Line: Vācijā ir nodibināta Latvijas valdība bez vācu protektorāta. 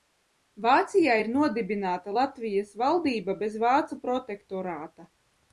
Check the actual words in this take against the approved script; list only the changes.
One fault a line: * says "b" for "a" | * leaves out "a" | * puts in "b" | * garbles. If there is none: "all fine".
all fine